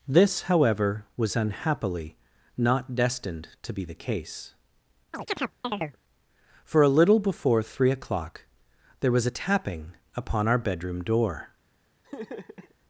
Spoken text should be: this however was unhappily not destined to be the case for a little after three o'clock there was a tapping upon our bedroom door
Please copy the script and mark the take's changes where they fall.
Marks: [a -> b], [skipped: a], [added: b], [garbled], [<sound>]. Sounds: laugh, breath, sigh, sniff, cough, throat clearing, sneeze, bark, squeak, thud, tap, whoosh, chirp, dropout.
this however was unhappily not destined to be the case [chirp] for a little [after -> before] three o'clock there was a tapping upon our bedroom door [laugh]